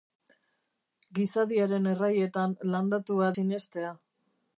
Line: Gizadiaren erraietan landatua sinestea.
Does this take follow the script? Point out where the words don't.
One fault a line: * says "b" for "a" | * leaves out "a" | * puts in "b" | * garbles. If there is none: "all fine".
all fine